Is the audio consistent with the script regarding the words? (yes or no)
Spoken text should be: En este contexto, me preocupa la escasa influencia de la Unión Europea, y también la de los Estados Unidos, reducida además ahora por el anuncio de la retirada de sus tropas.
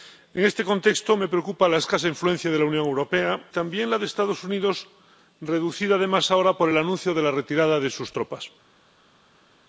no